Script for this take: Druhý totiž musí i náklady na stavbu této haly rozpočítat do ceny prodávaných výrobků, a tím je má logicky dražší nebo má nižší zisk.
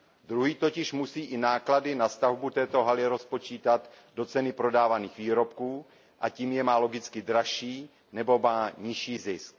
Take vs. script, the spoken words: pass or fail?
pass